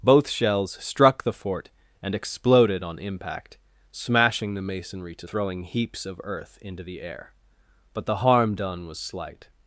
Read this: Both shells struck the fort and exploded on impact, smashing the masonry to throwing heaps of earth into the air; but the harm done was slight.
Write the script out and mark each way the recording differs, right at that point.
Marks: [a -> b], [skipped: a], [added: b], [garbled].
Both shells struck the fort and exploded on impact, smashing the masonry to throwing heaps of earth into the air; but the harm done was slight.